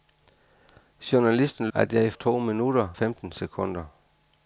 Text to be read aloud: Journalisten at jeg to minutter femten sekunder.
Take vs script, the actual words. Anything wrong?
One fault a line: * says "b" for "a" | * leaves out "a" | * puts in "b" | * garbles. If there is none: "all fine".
all fine